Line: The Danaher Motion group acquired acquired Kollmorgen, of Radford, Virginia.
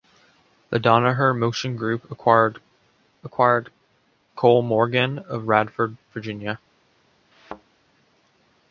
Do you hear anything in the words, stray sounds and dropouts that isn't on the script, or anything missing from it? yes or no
yes